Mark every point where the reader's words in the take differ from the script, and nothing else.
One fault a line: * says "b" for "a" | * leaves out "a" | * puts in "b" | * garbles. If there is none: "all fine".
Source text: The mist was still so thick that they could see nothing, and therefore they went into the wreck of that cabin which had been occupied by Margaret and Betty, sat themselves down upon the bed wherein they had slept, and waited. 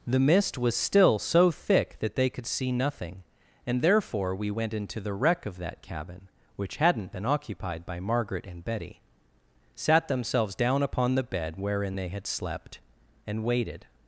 * says "we" for "they"
* says "hadn't" for "had"